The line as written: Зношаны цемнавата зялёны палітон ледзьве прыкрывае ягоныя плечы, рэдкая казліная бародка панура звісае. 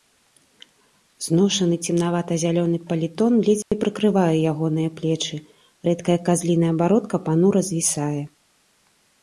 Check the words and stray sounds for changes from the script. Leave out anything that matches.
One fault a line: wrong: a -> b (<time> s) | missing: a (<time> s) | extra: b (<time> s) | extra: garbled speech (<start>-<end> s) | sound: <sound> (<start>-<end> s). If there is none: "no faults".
sound: dropout (3.6-3.7 s)